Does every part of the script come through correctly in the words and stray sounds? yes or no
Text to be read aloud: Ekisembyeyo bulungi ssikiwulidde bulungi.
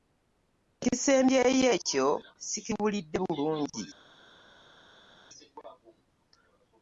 no